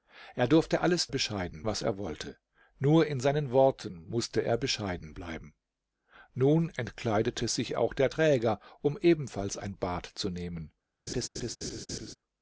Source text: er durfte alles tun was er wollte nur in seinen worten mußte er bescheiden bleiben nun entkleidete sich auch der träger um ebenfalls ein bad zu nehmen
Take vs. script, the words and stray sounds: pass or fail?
fail